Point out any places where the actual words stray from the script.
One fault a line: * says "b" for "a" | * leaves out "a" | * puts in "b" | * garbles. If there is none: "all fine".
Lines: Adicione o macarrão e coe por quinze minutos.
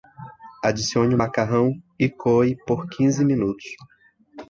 all fine